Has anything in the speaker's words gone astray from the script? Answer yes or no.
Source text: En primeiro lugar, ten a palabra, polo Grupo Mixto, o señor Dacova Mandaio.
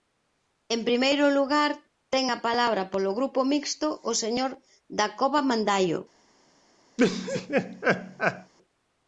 no